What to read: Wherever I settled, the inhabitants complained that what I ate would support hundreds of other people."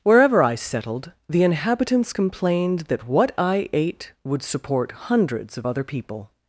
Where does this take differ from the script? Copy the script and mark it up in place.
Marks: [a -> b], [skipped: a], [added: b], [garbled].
Wherever I settled, the inhabitants complained that what I ate would support hundreds of other people."